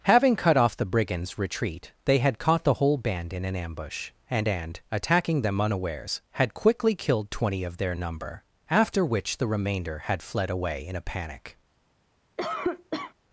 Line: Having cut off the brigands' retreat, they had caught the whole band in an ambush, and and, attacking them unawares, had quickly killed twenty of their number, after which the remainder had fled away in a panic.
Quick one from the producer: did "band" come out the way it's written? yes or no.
yes